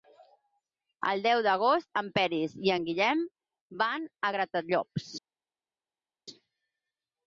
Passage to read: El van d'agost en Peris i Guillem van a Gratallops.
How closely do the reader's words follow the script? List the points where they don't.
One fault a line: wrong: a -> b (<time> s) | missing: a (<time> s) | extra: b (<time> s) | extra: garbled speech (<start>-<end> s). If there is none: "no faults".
wrong: van -> deu (1.2 s)
extra: en (2.8 s)